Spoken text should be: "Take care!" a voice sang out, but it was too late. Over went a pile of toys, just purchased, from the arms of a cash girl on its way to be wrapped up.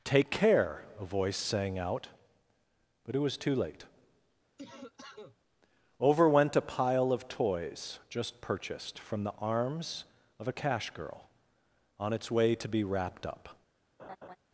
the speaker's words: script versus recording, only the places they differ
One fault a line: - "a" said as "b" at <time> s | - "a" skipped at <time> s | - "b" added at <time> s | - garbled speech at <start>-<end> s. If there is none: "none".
none